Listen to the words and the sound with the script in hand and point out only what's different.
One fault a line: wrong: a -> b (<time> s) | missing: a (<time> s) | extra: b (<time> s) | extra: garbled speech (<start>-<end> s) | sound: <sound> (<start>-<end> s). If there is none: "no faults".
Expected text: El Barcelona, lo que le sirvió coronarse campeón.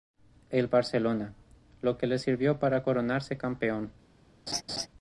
extra: para (2.6 s)
sound: laugh (4.5-4.9 s)